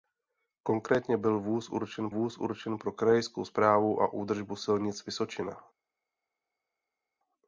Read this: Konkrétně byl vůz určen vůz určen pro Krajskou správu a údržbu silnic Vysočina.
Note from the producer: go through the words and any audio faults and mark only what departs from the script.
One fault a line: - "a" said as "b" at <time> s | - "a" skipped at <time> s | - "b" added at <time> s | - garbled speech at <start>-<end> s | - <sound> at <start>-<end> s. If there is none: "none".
none